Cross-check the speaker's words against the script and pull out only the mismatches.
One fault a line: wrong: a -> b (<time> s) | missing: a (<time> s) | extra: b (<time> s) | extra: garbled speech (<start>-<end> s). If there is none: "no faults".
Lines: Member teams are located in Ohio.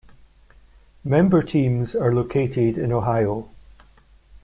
no faults